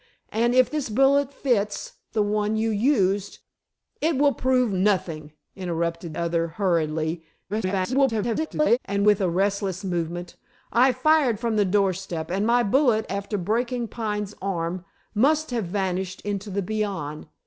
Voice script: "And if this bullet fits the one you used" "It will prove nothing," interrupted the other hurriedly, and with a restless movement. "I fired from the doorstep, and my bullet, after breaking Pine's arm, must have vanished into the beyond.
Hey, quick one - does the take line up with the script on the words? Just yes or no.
no